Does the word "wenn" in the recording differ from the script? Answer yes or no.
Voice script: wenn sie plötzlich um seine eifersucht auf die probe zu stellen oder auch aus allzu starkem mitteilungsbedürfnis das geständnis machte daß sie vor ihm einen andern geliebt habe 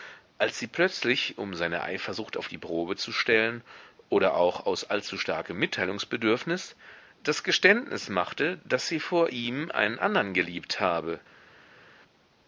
yes